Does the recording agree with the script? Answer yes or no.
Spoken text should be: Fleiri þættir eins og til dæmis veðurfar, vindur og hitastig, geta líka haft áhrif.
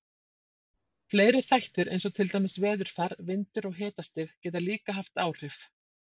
yes